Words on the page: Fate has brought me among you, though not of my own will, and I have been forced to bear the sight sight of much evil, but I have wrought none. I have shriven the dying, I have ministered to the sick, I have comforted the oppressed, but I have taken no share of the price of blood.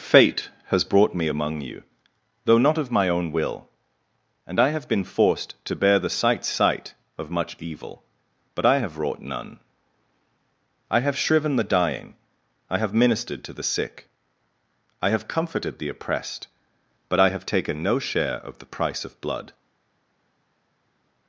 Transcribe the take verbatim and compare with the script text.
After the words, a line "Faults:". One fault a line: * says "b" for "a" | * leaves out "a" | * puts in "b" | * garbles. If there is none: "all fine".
Fate has brought me among you, though not of my own will, and I have been forced to bear the sight sight of much evil, but I have wrought none. I have shriven the dying, I have ministered to the sick, I have comforted the oppressed, but I have taken no share of the price of blood.
Faults:
all fine